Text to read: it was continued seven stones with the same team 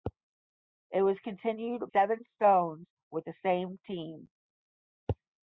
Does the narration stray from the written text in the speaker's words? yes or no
no